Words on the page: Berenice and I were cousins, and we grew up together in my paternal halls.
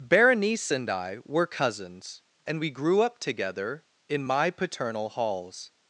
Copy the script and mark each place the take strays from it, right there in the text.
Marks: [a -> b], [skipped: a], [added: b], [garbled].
Berenice and I were cousins, and we grew up together in my paternal halls.